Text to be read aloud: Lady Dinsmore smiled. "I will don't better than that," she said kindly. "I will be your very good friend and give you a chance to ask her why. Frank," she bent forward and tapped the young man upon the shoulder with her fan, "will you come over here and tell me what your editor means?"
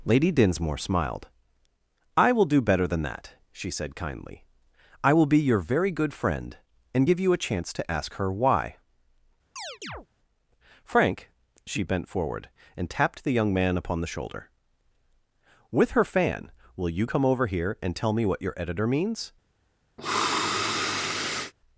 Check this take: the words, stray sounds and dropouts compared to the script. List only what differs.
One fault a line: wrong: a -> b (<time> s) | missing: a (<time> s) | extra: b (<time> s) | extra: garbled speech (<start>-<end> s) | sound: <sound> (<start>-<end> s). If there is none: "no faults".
wrong: don't -> do (2.5 s)
sound: chirp (9.6-10.1 s)
sound: sniff (20.0-21.5 s)